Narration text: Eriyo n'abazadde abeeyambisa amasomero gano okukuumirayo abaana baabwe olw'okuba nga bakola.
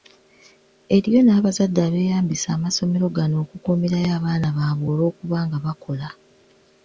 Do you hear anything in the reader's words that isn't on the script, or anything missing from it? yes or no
no